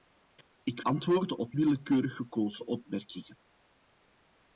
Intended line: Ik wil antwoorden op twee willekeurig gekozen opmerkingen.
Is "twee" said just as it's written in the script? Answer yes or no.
no